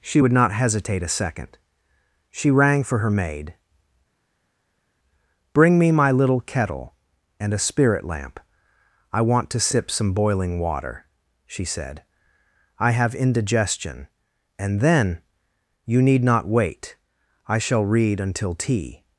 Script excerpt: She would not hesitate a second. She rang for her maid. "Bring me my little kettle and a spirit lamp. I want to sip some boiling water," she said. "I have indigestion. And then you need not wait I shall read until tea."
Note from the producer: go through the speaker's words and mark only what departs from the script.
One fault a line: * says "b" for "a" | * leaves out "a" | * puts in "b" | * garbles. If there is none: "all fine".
all fine